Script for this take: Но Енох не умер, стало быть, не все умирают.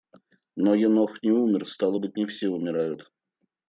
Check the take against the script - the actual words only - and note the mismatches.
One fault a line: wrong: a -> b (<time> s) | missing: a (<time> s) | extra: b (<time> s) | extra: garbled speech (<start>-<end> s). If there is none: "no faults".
no faults